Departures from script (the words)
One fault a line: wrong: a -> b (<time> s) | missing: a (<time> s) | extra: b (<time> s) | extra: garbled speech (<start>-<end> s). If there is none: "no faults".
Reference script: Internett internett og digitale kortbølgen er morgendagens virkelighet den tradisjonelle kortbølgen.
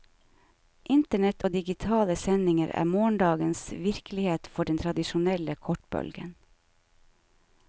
missing: internett (1.4 s)
wrong: kortbølgen -> sendinger (2.2 s)
extra: for (4.6 s)